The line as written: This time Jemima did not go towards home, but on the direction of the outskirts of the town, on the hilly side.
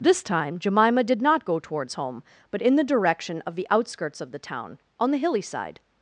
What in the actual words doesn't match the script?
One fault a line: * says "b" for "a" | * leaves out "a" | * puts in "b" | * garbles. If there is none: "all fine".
* says "in" for "on"